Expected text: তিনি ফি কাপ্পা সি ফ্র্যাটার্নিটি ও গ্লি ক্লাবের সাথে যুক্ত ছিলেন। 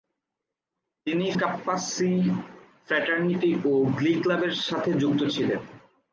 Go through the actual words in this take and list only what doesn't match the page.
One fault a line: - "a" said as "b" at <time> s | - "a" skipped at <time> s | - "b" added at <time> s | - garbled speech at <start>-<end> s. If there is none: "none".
- "ফি" skipped at 1.3 s